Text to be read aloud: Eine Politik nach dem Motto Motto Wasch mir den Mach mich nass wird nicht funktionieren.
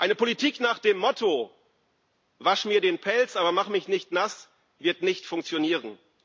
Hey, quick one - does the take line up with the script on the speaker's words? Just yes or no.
no